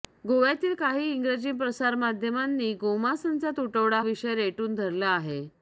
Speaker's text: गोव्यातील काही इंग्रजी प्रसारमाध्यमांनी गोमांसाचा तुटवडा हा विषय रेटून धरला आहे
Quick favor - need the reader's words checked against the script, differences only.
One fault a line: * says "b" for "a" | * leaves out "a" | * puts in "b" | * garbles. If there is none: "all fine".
* leaves out "हा"